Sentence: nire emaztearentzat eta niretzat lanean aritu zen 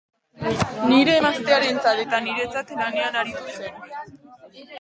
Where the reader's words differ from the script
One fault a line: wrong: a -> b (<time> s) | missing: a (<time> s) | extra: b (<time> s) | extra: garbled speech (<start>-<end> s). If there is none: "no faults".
no faults